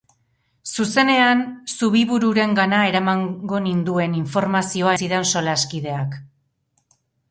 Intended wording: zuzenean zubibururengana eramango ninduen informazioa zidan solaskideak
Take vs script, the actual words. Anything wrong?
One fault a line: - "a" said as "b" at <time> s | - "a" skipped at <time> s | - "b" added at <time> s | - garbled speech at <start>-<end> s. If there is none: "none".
none